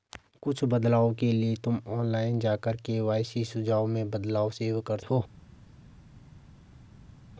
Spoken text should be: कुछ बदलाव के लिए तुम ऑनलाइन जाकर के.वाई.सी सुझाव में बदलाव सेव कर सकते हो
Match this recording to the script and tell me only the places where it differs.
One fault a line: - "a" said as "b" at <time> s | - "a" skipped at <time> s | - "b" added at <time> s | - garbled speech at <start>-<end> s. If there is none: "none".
- "सकते" skipped at 5.0 s